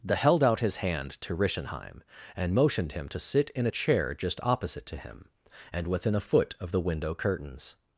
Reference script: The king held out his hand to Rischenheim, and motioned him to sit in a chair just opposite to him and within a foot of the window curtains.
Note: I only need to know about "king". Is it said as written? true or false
false